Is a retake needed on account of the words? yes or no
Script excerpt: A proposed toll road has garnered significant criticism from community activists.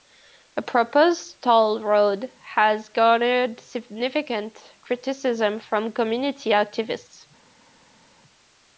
no